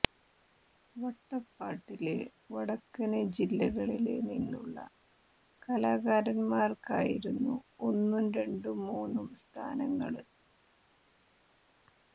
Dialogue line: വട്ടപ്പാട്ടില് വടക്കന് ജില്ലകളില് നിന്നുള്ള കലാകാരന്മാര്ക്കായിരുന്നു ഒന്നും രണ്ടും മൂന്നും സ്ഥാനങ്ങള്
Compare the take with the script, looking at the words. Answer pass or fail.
pass